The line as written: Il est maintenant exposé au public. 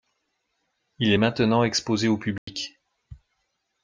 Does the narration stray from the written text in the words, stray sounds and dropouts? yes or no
yes